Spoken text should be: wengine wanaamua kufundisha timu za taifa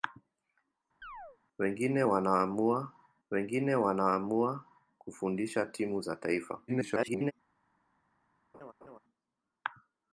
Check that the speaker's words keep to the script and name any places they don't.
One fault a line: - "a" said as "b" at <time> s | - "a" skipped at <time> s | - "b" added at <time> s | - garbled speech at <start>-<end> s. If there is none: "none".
- "wengine wanaamua" added at 3.3 s
- garbled speech at 6.7-7.3 s